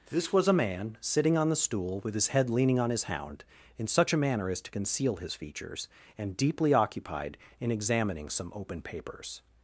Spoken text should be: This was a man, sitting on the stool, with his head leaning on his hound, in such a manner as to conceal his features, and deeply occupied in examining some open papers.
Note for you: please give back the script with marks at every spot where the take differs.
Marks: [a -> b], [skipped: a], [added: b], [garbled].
This was a man, sitting on the stool, with his head leaning on his hound, in such a manner as to conceal his features, and deeply occupied in examining some open papers.